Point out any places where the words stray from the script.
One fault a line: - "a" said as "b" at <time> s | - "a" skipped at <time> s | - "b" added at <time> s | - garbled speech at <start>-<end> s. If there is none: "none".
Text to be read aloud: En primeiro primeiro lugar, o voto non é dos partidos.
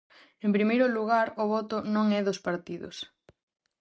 - "primeiro" skipped at 0.8 s